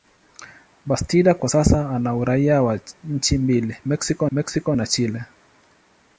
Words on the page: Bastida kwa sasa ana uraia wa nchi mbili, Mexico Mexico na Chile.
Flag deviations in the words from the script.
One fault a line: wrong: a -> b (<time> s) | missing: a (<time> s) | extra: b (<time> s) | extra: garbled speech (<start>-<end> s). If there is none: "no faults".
no faults